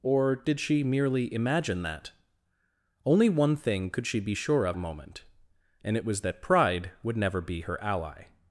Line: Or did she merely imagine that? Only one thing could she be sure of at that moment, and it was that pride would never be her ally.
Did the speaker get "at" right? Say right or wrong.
wrong